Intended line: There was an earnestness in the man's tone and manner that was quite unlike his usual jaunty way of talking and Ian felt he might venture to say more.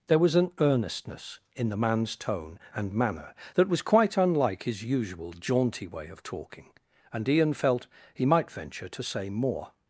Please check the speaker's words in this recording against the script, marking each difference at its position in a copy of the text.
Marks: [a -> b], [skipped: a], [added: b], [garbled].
There was an earnestness in the man's tone and manner that was quite unlike his usual jaunty way of talking and Ian felt he might venture to say more.